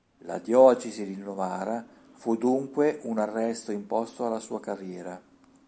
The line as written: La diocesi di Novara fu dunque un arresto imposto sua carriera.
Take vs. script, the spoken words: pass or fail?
fail